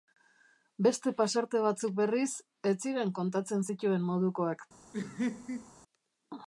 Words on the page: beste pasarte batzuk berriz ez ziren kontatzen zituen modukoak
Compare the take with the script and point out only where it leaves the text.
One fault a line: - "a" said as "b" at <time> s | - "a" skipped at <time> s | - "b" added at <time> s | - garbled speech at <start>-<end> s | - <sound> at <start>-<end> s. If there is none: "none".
- laugh at 4.9-5.7 s